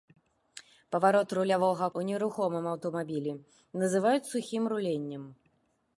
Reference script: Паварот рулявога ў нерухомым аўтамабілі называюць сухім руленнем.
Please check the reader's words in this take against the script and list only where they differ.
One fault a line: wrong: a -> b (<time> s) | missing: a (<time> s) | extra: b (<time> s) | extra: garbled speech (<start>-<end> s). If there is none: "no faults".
no faults